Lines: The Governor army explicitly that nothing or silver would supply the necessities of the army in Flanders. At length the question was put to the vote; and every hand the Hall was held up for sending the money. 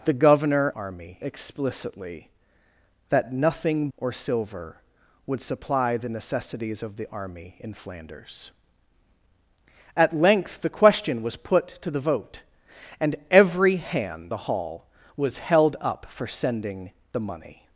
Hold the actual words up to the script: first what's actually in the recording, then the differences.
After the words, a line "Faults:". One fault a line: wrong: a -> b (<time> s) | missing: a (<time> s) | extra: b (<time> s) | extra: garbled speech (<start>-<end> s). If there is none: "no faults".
The Governor army explicitly that nothing or silver would supply the necessities of the army in Flanders. At length the question was put to the vote; and every hand the Hall was held up for sending the money.
Faults:
no faults